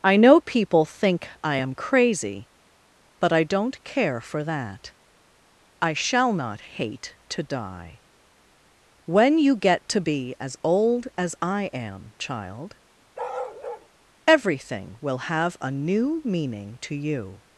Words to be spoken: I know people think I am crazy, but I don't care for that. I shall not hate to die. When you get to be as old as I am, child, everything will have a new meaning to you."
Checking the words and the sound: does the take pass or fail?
fail